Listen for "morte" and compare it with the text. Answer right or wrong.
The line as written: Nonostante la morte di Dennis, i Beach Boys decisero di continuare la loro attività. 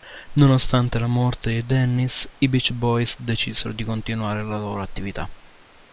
right